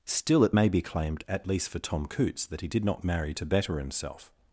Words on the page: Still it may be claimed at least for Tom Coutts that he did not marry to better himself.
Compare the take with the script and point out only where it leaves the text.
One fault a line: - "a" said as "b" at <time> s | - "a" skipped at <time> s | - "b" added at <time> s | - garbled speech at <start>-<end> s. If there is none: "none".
none